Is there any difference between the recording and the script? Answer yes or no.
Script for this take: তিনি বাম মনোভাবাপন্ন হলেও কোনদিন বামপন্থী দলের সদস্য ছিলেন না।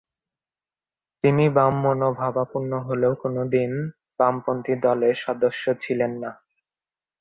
no